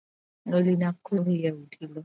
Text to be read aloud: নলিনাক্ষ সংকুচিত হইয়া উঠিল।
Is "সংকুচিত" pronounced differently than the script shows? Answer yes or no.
yes